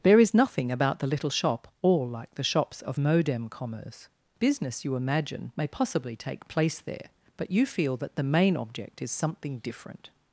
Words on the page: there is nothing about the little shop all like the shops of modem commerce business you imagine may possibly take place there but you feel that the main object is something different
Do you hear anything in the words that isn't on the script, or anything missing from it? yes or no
no